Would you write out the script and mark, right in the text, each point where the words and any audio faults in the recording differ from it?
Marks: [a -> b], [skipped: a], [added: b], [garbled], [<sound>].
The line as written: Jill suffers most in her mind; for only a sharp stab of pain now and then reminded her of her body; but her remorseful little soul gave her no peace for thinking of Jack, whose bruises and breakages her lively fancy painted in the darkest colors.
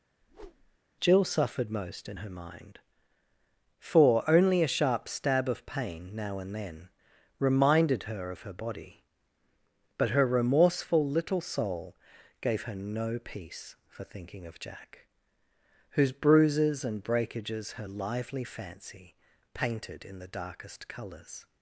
[whoosh] Jill [suffers -> suffered] most in her mind; for only a sharp stab of pain now and then reminded her of her body; but her remorseful little soul gave her no peace for thinking of Jack, whose bruises and breakages her lively fancy painted in the darkest colors.